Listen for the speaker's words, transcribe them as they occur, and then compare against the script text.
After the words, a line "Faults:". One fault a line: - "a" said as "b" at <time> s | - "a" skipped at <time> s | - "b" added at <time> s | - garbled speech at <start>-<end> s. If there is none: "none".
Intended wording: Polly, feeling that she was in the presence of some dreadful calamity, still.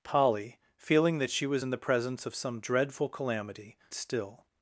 Polly, feeling that she was in the presence of some dreadful calamity, still.
Faults:
none